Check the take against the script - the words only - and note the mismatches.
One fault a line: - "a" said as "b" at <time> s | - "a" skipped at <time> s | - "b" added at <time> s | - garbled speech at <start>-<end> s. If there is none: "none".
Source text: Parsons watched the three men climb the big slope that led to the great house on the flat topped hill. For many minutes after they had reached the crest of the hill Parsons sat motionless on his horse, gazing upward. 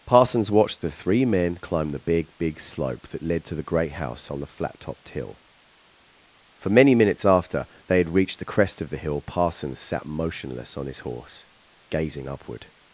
- "big" added at 2.4 s